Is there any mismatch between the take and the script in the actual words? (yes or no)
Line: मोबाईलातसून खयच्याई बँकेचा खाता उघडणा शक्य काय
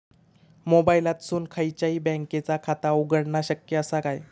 yes